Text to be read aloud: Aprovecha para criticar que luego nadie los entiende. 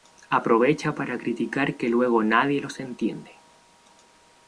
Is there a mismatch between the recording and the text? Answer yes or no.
no